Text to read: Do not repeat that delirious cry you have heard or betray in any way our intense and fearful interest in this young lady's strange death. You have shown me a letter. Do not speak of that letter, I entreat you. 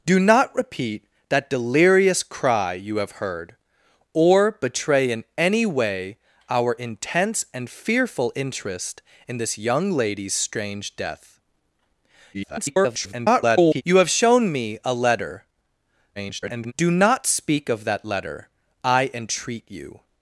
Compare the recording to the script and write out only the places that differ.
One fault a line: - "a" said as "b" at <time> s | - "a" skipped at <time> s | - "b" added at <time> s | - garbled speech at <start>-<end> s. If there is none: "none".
- garbled speech at 12.3-13.8 s
- garbled speech at 16.2-16.7 s